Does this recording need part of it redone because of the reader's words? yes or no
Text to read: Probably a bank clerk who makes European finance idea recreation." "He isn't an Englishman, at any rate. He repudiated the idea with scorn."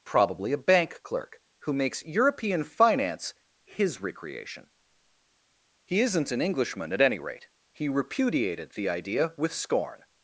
yes